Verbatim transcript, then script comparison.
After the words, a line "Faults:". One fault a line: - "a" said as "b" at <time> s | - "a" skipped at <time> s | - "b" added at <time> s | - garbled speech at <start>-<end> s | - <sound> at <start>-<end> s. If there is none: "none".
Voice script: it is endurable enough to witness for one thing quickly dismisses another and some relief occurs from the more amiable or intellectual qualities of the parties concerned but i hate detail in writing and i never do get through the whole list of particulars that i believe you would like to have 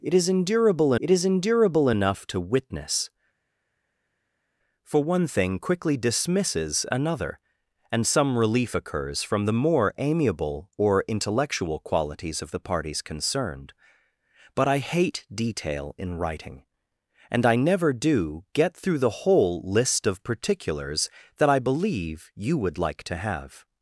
it is endurable it is endurable enough to witness for one thing quickly dismisses another and some relief occurs from the more amiable or intellectual qualities of the parties concerned but i hate detail in writing and i never do get through the whole list of particulars that i believe you would like to have
Faults:
- "it is endurable" added at 1.0 s